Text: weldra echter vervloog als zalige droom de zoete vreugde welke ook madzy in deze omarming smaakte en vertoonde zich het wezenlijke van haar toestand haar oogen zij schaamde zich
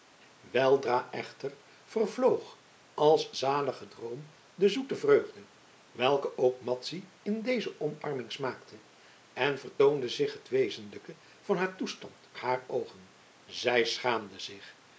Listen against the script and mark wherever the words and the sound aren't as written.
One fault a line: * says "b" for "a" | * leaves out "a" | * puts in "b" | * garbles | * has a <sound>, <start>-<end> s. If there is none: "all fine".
all fine